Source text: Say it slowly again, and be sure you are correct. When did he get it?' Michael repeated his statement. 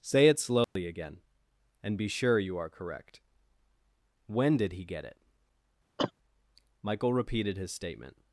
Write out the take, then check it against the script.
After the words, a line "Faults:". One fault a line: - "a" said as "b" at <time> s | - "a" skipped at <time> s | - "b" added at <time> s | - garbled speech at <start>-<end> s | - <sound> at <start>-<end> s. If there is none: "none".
Say it slowly again, and be sure you are correct. When did he get it?' Michael repeated his statement.
Faults:
- dropout at 0.6-0.8 s
- cough at 6.0-6.1 s